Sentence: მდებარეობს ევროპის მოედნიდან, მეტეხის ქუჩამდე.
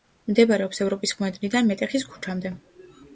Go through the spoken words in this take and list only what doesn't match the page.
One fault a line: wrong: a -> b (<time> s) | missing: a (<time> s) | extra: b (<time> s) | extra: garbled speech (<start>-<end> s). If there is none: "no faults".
no faults